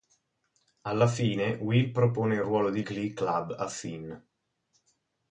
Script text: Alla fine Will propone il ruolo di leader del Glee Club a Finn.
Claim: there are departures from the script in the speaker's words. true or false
true